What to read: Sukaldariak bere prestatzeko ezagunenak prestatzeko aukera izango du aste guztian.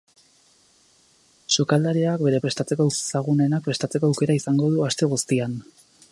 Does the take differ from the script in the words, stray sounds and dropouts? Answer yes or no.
no